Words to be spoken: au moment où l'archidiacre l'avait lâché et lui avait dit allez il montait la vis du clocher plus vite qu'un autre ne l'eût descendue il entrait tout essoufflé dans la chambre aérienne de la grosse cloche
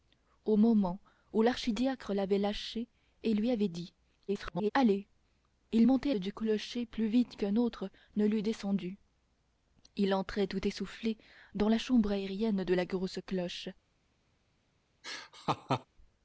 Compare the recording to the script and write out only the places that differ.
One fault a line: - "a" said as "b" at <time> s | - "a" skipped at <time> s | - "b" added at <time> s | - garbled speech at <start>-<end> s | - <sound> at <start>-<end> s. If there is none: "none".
- garbled speech at 4.3-4.7 s
- "la vis" skipped at 6.1 s
- laugh at 15.0-15.9 s